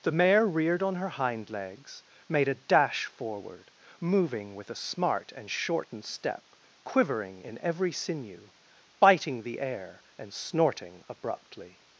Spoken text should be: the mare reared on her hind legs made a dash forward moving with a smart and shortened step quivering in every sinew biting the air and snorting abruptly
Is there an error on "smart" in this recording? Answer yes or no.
no